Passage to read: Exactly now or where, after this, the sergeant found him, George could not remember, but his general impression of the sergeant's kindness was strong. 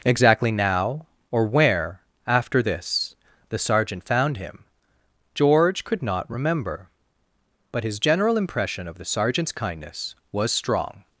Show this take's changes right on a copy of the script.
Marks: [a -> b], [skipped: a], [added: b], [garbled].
Exactly now or where, after this, the sergeant found him, George could not remember, but his general impression of the sergeant's kindness was strong.